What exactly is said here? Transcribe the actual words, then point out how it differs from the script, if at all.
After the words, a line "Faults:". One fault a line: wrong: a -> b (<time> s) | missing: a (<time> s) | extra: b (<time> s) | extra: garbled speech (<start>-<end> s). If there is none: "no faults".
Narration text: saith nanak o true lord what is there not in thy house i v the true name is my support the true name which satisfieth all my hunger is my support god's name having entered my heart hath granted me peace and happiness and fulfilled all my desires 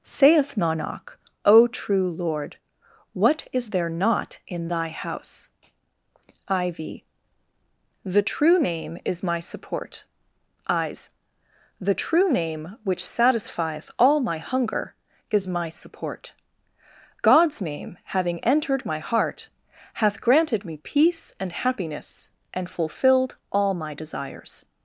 saith nanak o true lord what is there not in thy house i v the true name is my support eyes the true name which satisfieth all my hunger is my support god's name having entered my heart hath granted me peace and happiness and fulfilled all my desires
Faults:
extra: eyes (10.7 s)